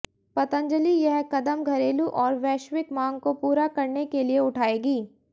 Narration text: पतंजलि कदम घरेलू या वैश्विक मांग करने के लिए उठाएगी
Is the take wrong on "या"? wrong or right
wrong